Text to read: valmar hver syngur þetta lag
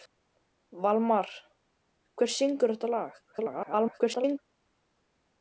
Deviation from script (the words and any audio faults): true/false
true